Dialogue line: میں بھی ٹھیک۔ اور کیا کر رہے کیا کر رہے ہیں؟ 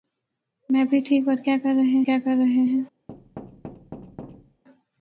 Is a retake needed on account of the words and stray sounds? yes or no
yes